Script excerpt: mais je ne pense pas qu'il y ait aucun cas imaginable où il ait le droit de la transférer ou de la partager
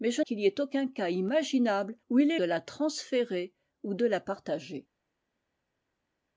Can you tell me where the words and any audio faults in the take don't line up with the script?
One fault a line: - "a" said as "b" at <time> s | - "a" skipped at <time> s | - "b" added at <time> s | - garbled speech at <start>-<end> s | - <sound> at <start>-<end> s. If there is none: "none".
- "ne pense pas" skipped at 0.2 s
- "le droit" skipped at 2.4 s